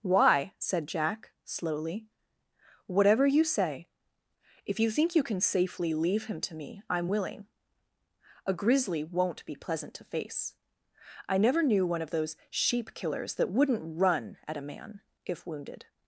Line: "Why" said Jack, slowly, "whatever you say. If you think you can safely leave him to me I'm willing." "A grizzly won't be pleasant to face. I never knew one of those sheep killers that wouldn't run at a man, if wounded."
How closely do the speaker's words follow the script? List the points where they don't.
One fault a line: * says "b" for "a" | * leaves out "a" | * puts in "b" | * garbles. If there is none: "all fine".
all fine